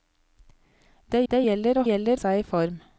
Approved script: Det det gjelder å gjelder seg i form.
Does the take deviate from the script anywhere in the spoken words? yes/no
no